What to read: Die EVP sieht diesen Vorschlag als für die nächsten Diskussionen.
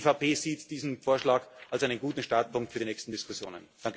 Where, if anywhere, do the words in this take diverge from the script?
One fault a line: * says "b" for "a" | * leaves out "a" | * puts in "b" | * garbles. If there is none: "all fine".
* puts in "einen guten Startpunkt"